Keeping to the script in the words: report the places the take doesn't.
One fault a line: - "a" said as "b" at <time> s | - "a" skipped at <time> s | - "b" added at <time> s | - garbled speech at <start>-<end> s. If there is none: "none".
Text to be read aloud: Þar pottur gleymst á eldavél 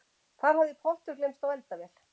- "hafði" added at 0.6 s